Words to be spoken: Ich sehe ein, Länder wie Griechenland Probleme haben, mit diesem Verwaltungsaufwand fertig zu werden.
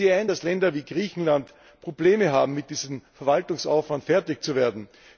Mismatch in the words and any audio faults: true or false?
true